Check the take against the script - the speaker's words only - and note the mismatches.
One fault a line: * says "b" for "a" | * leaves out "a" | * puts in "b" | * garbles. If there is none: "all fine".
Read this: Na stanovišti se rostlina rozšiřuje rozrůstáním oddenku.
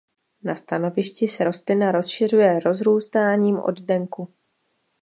all fine